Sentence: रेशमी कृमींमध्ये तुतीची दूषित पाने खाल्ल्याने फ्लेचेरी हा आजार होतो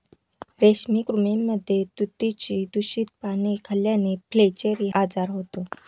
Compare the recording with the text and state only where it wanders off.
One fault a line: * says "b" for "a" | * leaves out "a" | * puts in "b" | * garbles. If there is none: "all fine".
* leaves out "हा"